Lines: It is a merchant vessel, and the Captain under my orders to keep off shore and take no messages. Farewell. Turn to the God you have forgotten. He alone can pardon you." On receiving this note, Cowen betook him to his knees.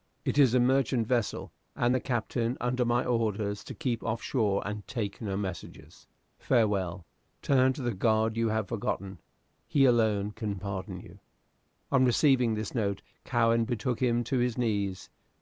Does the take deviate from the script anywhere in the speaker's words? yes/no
no